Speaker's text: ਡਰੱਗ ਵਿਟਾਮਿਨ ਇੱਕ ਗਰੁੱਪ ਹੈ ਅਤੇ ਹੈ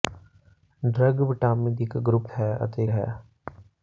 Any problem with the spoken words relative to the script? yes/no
no